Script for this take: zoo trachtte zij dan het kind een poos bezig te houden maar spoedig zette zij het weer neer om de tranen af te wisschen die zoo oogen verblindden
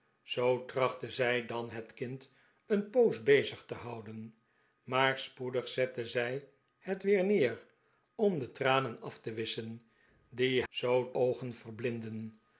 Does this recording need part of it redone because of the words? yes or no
no